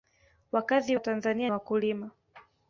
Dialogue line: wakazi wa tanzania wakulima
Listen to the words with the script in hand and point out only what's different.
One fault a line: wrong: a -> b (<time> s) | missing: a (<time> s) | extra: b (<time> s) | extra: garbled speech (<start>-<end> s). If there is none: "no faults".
no faults